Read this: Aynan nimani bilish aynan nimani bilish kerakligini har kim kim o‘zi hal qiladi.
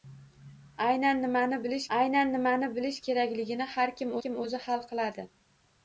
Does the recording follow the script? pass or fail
pass